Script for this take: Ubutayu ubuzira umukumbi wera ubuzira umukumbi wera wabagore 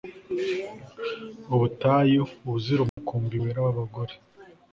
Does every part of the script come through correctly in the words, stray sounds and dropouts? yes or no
no